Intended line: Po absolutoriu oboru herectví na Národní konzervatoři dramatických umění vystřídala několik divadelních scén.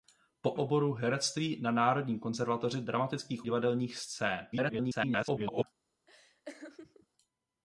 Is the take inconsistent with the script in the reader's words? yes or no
yes